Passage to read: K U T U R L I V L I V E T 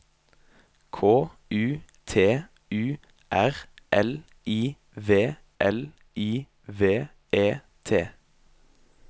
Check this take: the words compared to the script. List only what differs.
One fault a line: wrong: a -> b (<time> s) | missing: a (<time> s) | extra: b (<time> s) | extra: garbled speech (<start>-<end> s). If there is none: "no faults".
no faults